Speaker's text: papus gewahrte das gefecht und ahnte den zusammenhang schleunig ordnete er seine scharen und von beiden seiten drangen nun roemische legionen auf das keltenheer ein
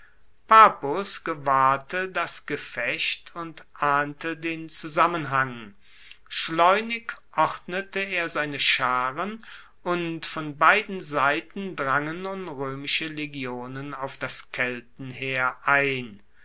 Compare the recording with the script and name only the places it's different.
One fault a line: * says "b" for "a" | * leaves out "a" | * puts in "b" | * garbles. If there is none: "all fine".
all fine